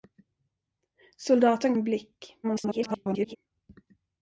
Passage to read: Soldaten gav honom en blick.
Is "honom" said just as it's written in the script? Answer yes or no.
no